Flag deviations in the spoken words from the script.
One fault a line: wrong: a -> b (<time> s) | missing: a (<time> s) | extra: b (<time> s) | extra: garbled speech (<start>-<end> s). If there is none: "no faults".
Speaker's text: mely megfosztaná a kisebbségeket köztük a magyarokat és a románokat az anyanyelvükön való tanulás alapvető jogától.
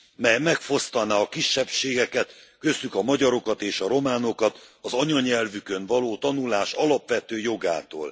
no faults